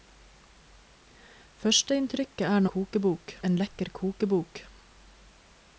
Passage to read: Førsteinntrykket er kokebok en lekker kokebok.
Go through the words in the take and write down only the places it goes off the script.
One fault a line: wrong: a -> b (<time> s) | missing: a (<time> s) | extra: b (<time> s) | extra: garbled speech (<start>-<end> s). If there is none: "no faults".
no faults